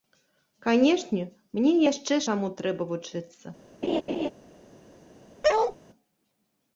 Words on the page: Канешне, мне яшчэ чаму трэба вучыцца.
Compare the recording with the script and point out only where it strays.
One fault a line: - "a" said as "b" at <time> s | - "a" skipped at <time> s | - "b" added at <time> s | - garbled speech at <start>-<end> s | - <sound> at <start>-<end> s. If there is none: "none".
- laugh at 3.8-4.3 s
- bark at 5.4-5.8 s